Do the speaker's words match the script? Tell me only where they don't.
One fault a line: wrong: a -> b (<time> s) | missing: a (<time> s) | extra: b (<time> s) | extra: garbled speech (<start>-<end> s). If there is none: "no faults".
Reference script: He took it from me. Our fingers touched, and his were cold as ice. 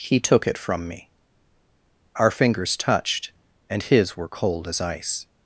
no faults